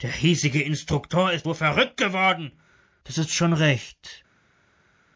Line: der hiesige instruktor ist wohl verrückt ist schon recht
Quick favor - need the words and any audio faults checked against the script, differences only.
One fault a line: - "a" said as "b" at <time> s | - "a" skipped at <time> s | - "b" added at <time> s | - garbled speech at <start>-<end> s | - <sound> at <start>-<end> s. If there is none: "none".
- "geworden das" added at 2.0 s